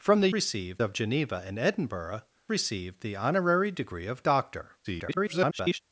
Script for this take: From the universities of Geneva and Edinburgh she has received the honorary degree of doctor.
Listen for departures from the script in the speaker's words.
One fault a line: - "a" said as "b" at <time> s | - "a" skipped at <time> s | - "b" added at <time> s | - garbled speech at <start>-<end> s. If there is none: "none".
- "universities" said as "received" at 0.3 s
- "she has" skipped at 2.2 s
- garbled speech at 4.8-5.8 s